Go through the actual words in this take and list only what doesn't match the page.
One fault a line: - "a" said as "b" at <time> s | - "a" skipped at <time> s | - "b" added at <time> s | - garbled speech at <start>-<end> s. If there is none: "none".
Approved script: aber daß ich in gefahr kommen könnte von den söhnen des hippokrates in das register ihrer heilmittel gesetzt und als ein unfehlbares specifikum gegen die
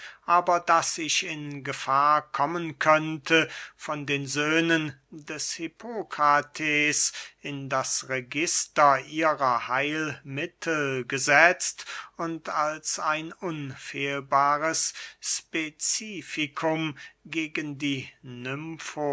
none